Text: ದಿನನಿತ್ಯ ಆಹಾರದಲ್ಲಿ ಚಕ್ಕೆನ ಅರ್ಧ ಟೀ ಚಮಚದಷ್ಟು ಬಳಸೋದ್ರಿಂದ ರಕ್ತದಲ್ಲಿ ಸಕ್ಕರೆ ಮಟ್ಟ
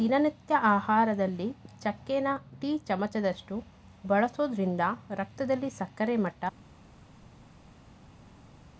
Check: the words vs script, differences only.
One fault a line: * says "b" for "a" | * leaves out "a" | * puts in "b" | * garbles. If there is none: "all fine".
* leaves out "ಅರ್ಧ"